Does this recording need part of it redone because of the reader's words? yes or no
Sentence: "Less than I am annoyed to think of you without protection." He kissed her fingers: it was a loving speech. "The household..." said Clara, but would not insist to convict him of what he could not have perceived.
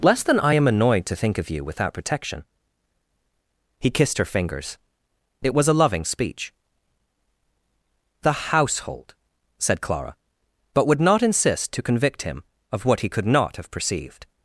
no